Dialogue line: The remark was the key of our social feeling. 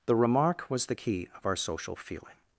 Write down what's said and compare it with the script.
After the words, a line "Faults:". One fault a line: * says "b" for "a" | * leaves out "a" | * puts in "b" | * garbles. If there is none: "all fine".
The remark was the key of our social feeling.
Faults:
all fine